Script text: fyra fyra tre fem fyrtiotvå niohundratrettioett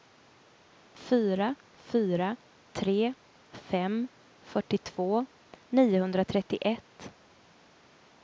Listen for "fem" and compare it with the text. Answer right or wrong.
right